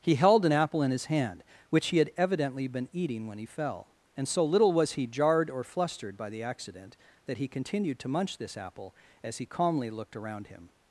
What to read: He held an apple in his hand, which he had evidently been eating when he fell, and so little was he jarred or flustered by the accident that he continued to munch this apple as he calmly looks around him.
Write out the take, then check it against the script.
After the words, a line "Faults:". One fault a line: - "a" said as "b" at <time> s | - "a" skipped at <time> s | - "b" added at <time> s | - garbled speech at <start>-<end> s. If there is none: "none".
He held an apple in his hand, which he had evidently been eating when he fell, and so little was he jarred or flustered by the accident that he continued to munch this apple as he calmly looked around him.
Faults:
- "looks" said as "looked" at 9.9 s